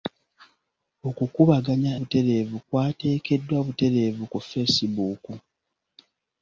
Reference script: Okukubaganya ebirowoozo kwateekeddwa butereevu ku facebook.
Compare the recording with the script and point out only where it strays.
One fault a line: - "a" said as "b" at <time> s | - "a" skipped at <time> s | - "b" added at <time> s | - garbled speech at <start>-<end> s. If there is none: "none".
- "ebirowoozo" said as "butereevu" at 2.0 s